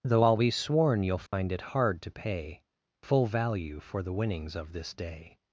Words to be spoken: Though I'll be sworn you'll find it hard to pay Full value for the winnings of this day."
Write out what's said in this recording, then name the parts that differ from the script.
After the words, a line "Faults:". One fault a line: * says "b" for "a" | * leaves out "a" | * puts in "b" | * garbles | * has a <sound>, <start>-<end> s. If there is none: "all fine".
Though I'll be sworn you'll find it hard to pay Full value for the winnings of this day."
Faults:
* has a dropout, 1.3-1.3 s